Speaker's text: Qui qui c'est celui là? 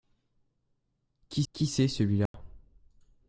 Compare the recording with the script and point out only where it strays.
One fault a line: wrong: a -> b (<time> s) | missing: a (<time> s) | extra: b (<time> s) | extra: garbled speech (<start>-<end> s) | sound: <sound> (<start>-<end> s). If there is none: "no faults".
sound: dropout (2.3-2.3 s)